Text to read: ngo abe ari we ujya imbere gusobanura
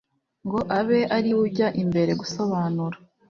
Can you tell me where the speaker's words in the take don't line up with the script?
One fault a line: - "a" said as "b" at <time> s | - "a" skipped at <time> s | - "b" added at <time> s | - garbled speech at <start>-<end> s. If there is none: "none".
none